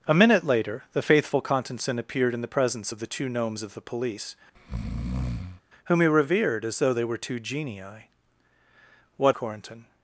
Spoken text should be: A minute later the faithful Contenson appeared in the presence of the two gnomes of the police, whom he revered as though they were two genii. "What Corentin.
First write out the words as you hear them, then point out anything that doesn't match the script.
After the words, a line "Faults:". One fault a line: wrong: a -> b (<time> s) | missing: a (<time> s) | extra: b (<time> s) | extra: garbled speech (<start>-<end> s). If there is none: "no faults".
A minute later the faithful Contenson appeared in the presence of the two gnomes of the police, whom he revered as though they were two genii. "What Corentin.
Faults:
no faults